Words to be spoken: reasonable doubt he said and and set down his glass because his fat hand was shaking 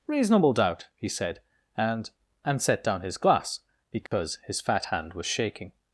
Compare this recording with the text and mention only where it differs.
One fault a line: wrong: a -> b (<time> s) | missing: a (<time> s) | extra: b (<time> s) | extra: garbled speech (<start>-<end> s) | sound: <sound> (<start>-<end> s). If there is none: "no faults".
sound: dropout (4.1-4.1 s)